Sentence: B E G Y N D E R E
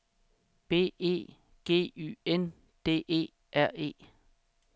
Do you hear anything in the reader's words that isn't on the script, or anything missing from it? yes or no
no